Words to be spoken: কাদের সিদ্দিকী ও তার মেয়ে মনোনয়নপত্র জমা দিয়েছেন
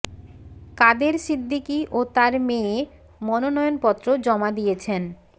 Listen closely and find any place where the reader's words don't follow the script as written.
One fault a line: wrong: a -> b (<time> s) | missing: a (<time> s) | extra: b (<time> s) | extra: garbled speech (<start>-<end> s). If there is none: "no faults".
no faults